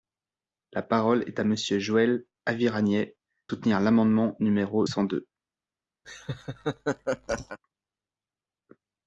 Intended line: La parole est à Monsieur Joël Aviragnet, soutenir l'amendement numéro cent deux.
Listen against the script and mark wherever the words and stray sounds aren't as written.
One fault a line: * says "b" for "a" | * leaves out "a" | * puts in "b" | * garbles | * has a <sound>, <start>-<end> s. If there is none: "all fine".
* has a laugh, 6.0-7.6 s